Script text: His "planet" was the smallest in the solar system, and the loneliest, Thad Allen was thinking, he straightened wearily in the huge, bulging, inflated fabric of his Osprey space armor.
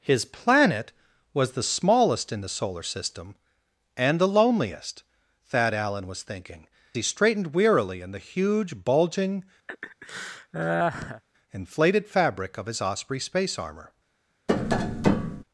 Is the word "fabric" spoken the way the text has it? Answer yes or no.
yes